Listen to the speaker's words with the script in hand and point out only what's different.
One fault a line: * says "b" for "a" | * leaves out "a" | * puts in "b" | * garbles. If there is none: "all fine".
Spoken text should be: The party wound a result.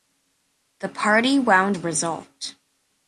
all fine